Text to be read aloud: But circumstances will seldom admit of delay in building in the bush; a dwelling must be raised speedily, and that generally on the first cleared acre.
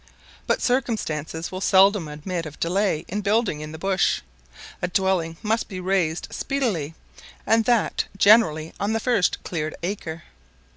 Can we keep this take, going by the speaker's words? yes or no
yes